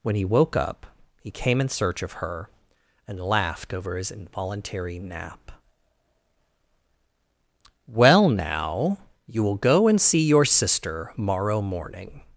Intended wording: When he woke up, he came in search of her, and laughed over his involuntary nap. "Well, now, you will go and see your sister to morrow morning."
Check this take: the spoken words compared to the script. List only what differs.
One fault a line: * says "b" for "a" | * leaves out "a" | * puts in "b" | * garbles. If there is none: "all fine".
* leaves out "to"